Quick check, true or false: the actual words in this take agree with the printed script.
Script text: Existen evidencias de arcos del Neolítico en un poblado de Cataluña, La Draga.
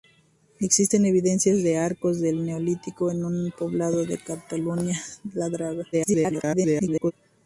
false